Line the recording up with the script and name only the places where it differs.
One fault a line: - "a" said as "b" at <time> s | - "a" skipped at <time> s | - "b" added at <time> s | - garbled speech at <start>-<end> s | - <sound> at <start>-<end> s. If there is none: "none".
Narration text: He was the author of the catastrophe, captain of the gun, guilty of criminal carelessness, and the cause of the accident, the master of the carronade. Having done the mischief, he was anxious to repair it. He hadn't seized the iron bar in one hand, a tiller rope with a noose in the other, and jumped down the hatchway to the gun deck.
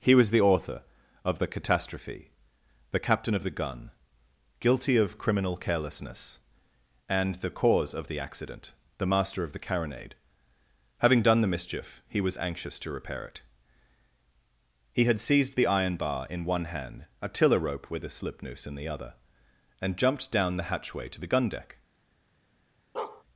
- "the" added at 2.9 s
- "hadn't" said as "had" at 15.0 s
- "slip" added at 18.1 s
- bark at 22.9-23.2 s